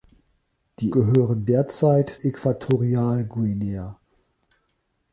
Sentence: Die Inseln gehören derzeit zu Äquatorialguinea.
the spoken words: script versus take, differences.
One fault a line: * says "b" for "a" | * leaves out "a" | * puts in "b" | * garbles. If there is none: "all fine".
* leaves out "Inseln"
* leaves out "zu"